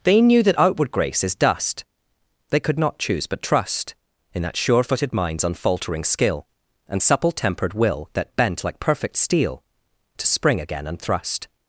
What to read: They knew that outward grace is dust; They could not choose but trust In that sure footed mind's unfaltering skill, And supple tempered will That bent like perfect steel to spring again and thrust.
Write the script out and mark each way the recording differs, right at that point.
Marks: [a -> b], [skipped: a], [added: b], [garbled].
They knew that outward grace is dust; They could not choose but trust In that sure footed mind's unfaltering skill, And supple tempered will That bent like perfect steel to spring again and thrust.